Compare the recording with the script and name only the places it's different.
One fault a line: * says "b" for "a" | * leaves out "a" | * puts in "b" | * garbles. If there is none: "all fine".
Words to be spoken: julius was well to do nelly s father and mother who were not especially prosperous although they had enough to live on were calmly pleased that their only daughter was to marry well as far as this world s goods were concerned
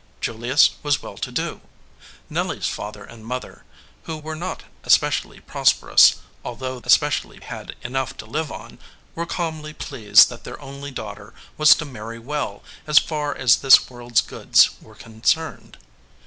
* says "especially" for "they"